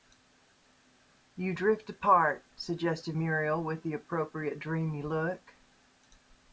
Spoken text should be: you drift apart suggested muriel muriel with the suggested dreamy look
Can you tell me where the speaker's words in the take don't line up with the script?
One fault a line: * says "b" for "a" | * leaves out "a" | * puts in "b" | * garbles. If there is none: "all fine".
* leaves out "muriel"
* says "appropriate" for "suggested"